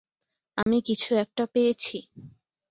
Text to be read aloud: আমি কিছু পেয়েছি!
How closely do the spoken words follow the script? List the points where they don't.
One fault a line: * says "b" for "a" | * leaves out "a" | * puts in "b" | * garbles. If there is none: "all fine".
* puts in "একটা"